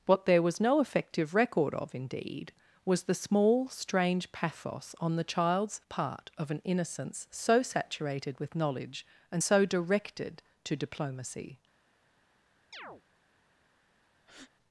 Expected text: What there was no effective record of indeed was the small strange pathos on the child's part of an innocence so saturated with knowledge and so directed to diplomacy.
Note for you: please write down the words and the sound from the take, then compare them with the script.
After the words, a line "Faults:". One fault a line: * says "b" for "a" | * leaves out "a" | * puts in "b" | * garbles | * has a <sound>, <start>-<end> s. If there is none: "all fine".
What there was no effective record of indeed was the small strange pathos on the child's part of an innocence so saturated with knowledge and so directed to diplomacy.
Faults:
* has a chirp, 12.7-13.0 s
* has a breath, 14.2-14.5 s